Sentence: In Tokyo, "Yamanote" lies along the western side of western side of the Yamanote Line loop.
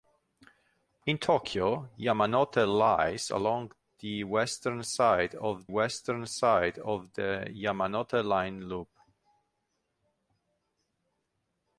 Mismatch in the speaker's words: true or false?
false